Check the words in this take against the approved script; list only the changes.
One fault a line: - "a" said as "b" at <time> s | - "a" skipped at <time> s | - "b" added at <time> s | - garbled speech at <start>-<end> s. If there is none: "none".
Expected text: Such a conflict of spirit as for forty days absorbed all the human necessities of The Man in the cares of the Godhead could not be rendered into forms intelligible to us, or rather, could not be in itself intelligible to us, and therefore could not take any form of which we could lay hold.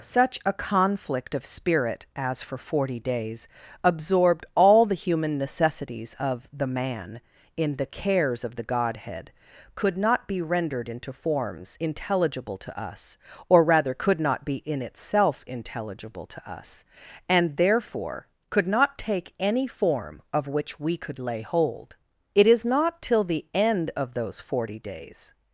- "It is not till the end of those forty days" added at 22.3 s